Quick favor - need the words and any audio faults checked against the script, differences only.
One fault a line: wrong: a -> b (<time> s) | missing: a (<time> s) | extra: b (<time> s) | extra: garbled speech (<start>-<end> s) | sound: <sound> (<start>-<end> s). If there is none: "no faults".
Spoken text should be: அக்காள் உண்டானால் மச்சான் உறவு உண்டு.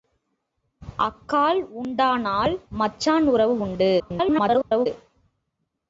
extra: garbled speech (4.0-4.9 s)